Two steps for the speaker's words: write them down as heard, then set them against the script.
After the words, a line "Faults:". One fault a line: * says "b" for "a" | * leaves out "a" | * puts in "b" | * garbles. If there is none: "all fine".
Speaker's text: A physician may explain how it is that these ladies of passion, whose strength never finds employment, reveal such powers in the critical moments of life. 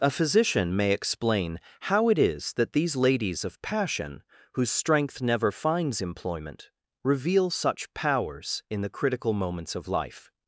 A physician may explain how it is that these ladies of passion, whose strength never finds employment, reveal such powers in the critical moments of life.
Faults:
all fine